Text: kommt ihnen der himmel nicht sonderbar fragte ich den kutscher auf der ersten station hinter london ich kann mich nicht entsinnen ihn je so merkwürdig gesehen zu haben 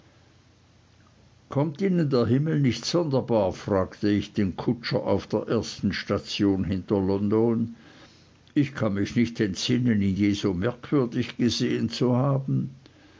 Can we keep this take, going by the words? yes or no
yes